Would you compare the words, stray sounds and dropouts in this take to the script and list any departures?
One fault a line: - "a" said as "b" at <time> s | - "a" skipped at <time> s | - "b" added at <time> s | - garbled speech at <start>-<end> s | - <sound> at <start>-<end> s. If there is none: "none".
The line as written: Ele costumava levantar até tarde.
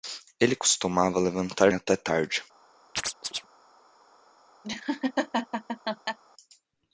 - chirp at 3.0-3.5 s
- laugh at 4.6-6.2 s